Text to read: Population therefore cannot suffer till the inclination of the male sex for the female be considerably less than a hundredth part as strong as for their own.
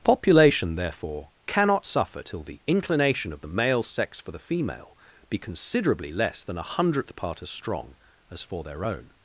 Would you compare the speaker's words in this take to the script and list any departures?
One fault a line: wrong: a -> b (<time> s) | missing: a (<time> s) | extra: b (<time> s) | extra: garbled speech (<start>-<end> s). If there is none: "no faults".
no faults